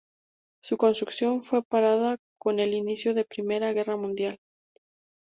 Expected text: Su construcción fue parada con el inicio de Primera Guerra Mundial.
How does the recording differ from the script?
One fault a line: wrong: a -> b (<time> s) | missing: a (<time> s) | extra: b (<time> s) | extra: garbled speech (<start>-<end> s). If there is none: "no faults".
no faults